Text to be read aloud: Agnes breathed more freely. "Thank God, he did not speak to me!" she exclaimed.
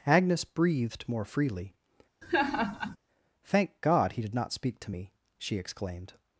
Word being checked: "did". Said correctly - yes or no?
yes